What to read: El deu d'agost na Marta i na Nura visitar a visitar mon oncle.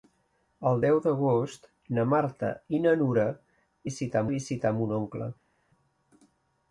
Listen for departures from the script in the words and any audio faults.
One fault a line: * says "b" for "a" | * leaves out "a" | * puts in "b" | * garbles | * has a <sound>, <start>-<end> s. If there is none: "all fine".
all fine